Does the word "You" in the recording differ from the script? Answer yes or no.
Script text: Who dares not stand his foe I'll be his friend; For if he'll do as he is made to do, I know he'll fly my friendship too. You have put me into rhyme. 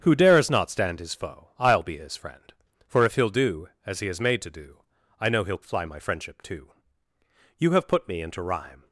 no